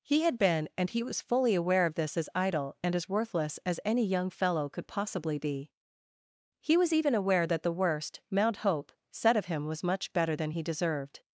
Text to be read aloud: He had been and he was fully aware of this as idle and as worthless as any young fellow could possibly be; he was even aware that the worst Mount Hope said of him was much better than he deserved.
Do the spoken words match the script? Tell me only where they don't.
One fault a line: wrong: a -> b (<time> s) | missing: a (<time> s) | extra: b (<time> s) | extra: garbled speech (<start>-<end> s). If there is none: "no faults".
no faults